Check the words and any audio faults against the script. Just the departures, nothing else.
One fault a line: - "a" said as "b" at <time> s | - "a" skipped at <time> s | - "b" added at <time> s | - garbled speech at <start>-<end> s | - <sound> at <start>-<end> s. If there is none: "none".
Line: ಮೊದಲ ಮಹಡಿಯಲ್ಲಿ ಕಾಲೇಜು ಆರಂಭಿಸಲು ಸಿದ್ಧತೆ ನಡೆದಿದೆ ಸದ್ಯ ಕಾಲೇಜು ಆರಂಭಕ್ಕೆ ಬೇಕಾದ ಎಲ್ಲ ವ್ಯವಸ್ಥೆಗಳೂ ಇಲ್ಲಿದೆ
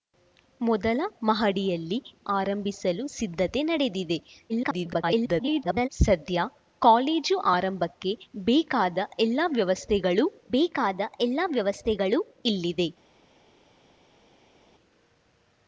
- "ಕಾಲೇಜು" skipped at 2.0 s
- garbled speech at 4.5-5.9 s
- "ಬೇಕಾದ ಎಲ್ಲ ವ್ಯವಸ್ಥೆಗಳೂ" added at 10.5 s